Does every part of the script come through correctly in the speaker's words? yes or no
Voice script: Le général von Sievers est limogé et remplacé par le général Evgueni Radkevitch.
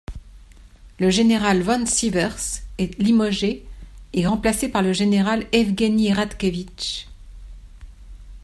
yes